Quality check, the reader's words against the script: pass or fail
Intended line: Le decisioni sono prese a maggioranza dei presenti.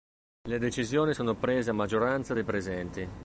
pass